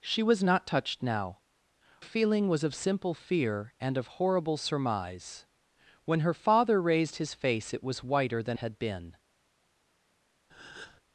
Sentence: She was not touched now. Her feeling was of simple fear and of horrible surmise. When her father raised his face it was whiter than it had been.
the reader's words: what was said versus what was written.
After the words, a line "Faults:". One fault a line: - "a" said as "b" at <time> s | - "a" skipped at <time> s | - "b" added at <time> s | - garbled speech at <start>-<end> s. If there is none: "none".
She was not touched now. Feeling was of simple fear and of horrible surmise. When her father raised his face it was whiter than had been.
Faults:
- "Her" skipped at 1.4 s
- "it" skipped at 8.6 s